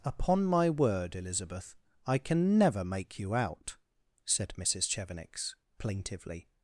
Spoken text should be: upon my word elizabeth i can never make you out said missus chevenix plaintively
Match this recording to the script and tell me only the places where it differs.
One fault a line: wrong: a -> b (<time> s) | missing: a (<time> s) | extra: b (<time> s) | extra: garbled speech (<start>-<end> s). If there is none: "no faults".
no faults